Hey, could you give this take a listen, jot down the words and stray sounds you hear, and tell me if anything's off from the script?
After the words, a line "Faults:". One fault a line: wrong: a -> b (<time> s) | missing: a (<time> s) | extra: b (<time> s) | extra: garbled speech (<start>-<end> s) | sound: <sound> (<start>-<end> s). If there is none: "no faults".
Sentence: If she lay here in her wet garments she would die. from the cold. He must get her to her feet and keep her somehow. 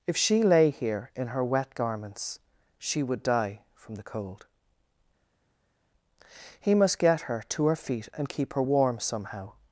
If she lay here in her wet garments she would die. from the cold. He must get her to her feet and keep her warm somehow.
Faults:
extra: warm (8.6 s)